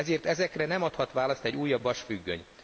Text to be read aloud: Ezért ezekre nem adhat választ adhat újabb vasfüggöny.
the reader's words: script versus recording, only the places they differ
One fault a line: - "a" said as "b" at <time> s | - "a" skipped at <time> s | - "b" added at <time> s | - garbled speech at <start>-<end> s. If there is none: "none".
- "adhat" said as "egy" at 1.4 s